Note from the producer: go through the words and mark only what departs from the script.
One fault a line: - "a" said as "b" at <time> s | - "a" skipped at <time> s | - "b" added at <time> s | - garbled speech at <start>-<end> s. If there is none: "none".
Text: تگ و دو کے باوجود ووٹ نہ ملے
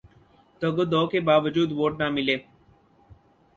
none